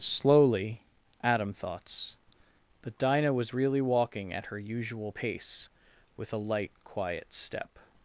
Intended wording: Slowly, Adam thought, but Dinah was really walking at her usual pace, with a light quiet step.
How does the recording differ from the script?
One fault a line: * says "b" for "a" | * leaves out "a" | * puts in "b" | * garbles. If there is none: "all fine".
* says "thoughts" for "thought"